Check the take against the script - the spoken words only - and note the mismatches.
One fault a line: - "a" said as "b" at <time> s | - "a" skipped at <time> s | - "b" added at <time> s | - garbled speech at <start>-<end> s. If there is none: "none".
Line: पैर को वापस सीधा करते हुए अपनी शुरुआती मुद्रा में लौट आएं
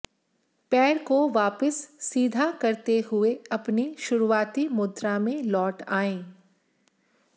none